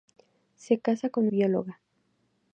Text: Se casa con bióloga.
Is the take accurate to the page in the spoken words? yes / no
yes